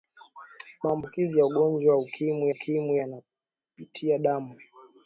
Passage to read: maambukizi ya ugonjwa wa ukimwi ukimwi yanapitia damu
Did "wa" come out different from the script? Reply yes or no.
no